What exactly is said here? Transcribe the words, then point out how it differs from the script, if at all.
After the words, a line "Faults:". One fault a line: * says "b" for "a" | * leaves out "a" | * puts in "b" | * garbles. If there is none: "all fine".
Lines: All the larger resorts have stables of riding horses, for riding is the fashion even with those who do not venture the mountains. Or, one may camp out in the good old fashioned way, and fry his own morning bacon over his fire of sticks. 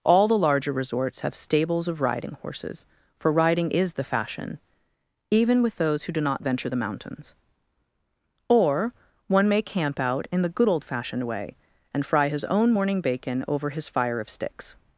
All the larger resorts have stables of riding horses, for riding is the fashion even with those who do not venture the mountains. Or, one may camp out in the good old fashioned way, and fry his own morning bacon over his fire of sticks.
Faults:
all fine